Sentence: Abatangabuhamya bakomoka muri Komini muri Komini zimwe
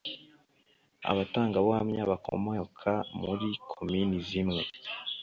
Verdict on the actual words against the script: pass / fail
fail